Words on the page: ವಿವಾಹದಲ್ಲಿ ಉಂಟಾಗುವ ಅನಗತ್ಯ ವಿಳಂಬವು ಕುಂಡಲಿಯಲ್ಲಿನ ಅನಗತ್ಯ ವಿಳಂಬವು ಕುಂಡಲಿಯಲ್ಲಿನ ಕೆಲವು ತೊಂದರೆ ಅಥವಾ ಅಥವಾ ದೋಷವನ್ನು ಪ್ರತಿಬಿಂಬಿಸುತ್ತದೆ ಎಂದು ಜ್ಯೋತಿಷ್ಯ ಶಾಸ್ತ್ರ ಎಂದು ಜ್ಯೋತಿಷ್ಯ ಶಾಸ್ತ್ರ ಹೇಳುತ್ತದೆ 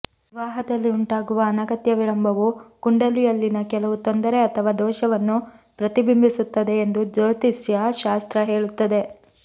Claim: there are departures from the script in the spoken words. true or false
true